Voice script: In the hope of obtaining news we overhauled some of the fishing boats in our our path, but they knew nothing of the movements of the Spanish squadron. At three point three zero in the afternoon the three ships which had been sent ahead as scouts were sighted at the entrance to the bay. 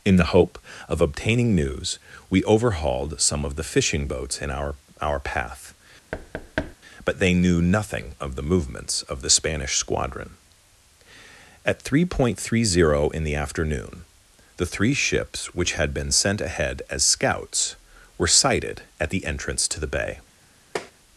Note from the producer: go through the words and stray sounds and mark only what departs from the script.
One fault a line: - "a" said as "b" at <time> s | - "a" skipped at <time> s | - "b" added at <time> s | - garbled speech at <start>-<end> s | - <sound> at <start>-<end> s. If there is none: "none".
- thud at 6.1-6.8 s
- tap at 20.8-20.9 s